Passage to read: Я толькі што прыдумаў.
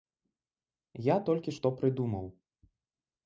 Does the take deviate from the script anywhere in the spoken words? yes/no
no